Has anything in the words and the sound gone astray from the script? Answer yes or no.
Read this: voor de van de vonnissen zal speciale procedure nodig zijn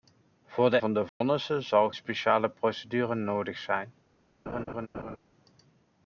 yes